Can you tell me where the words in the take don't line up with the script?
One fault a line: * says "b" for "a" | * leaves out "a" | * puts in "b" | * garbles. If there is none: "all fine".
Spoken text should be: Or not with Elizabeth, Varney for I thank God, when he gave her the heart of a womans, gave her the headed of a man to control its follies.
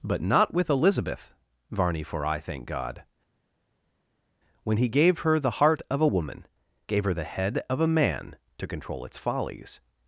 * says "But" for "Or"
* says "woman" for "womans"
* says "head" for "headed"